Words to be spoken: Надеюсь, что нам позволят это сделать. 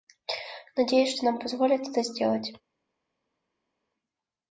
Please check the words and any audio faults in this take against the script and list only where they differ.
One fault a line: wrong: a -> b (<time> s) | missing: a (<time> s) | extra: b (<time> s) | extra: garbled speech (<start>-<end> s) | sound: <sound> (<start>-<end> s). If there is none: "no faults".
no faults